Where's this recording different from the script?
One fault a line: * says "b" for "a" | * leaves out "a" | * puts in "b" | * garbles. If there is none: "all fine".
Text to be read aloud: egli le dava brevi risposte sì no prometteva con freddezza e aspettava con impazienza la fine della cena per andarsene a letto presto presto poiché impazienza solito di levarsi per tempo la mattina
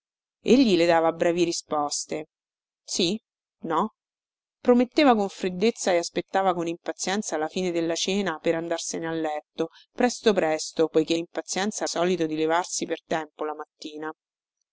all fine